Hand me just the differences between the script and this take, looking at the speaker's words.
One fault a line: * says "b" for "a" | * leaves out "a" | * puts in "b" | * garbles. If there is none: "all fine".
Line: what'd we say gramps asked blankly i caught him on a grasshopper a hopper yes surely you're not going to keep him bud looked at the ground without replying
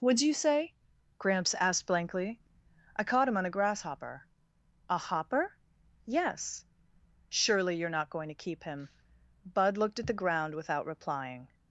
* says "you" for "we"